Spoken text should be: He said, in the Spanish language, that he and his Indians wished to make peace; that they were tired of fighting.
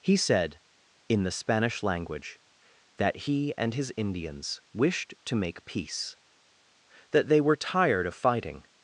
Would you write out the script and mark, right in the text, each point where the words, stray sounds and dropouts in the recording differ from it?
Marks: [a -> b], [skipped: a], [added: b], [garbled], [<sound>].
He said, in the Spanish language, that he and his Indians wished to make peace; that they were tired of fighting.